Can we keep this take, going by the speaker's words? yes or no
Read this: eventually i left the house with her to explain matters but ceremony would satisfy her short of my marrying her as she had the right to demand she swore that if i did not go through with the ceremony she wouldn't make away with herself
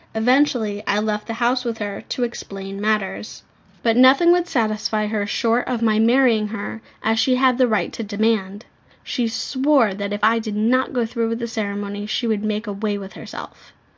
no